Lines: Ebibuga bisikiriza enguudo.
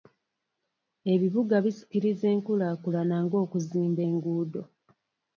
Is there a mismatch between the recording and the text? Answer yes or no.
yes